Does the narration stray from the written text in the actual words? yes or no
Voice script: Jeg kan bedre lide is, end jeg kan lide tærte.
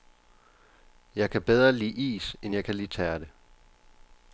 no